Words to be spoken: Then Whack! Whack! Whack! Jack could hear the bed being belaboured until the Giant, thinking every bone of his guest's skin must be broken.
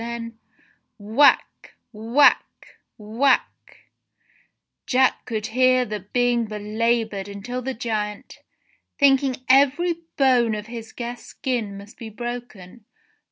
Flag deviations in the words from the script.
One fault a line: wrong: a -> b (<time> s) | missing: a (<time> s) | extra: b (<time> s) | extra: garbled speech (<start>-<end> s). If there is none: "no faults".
missing: bed (6.1 s)